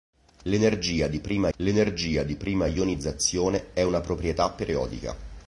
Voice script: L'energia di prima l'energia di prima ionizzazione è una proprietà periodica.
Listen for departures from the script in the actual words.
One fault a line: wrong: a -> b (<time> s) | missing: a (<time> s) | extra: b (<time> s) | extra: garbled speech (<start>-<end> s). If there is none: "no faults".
no faults